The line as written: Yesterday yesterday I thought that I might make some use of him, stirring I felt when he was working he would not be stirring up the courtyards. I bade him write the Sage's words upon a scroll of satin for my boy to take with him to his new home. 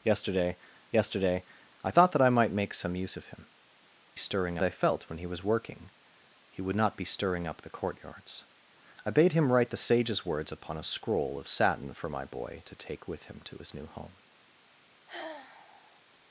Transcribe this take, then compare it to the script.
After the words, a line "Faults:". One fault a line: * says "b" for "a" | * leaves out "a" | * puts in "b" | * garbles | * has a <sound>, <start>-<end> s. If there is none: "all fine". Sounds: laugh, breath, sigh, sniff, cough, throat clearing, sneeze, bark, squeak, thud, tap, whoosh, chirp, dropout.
Yesterday yesterday I thought that I might make some use of him, stirring I felt when he was working he would not be stirring up the courtyards. I bade him write the Sage's words upon a scroll of satin for my boy to take with him to his new home.
Faults:
* has a sigh, 15.1-16.0 s